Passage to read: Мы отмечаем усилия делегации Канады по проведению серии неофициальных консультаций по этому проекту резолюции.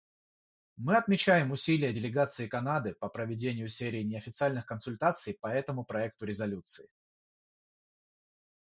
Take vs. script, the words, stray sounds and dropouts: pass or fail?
pass